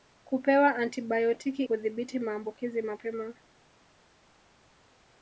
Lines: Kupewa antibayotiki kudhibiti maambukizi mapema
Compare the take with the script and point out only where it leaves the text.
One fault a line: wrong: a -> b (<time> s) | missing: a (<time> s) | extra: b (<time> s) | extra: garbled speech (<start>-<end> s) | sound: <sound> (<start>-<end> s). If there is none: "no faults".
no faults